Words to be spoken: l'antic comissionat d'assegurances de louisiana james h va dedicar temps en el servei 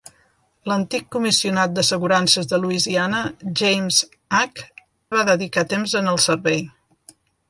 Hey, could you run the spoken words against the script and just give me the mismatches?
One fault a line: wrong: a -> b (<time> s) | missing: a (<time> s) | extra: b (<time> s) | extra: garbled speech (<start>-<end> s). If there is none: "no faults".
no faults